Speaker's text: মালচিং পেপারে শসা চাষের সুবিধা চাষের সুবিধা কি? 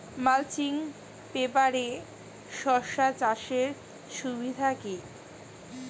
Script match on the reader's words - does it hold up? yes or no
no